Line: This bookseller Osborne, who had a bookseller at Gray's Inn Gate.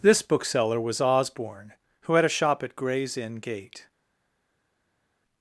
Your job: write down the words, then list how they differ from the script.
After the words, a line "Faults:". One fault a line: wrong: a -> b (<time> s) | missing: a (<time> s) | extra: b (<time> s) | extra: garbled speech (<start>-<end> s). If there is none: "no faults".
This bookseller was Osborne, who had a shop at Gray's Inn Gate.
Faults:
extra: was (0.8 s)
wrong: bookseller -> shop (2.3 s)